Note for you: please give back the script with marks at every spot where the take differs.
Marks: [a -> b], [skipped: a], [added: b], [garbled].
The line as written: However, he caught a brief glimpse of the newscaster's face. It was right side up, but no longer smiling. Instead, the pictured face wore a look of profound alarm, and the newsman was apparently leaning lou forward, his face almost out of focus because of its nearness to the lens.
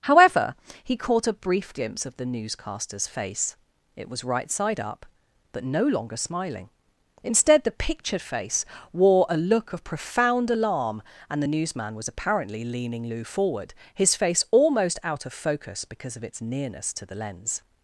However, he caught a brief glimpse of the newscaster's face. It was right side up, but no longer smiling. Instead, the pictured face wore a look of profound alarm, and the newsman was apparently leaning lou forward, his face almost out of focus because of its nearness to the lens.